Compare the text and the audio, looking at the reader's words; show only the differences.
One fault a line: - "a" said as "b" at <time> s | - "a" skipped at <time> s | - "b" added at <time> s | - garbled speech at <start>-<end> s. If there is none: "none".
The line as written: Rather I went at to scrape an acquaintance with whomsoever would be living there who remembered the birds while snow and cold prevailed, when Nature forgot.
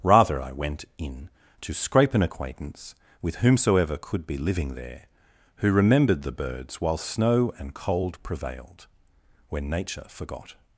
- "at" said as "in" at 1.0 s
- "would" said as "could" at 4.0 s